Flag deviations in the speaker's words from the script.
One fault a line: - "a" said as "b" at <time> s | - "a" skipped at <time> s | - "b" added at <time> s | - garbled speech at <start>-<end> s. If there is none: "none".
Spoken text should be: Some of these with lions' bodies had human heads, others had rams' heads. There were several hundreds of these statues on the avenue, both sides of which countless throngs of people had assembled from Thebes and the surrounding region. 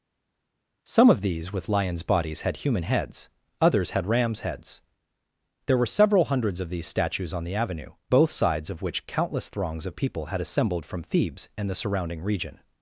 none